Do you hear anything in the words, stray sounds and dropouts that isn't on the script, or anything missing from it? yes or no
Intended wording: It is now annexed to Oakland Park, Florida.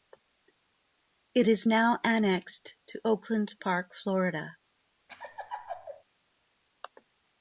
yes